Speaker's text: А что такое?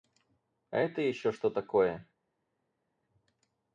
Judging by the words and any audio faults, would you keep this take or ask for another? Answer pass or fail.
fail